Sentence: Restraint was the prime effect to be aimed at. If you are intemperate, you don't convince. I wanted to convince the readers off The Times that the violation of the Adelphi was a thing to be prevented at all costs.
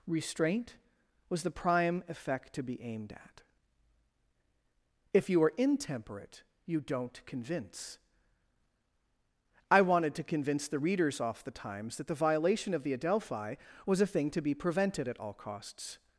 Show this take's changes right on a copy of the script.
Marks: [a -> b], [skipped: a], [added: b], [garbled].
Restraint was the prime effect to be aimed at. If you are intemperate, you don't convince. I wanted to convince the readers off The Times that the violation of the Adelphi was a thing to be prevented at all costs.